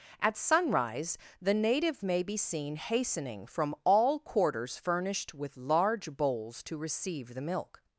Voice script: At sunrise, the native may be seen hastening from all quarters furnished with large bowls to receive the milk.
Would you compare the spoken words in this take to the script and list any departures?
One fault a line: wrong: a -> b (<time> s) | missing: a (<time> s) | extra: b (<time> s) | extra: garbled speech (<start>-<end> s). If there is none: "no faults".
no faults